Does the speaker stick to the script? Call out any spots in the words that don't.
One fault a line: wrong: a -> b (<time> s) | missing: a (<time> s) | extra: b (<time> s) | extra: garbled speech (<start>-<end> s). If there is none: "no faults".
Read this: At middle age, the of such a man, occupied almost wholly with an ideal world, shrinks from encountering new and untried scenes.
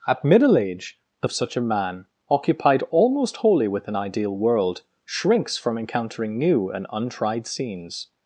no faults